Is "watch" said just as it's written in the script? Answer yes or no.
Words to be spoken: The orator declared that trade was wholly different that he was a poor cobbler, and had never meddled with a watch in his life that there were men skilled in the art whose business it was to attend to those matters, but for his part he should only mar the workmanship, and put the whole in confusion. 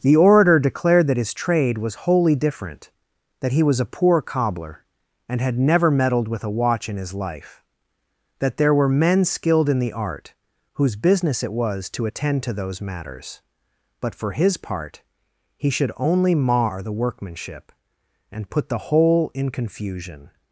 yes